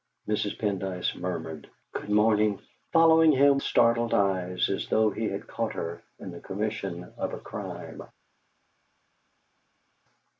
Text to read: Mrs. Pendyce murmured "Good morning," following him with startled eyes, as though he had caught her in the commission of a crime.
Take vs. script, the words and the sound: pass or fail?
fail